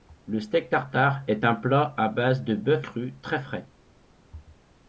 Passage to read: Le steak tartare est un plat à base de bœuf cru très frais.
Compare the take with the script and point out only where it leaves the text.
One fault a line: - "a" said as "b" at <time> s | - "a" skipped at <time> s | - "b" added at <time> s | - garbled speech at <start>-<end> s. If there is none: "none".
none